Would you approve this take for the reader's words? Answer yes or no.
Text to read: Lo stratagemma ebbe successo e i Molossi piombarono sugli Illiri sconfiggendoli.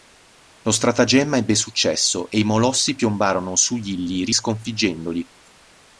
yes